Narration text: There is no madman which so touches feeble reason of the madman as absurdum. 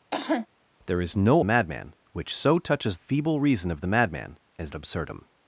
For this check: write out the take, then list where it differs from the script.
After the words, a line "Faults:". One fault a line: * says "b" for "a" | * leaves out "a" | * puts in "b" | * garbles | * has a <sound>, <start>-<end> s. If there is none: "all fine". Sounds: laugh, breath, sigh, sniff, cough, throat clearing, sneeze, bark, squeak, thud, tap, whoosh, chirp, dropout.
There is no madman which so touches feeble reason of the madman as absurdum.
Faults:
* has a cough, 0.1-0.5 s